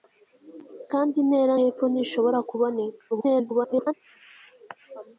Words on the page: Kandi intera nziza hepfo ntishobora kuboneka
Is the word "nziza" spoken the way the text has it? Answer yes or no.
no